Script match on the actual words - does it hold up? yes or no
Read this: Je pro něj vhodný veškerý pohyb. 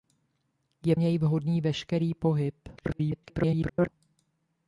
no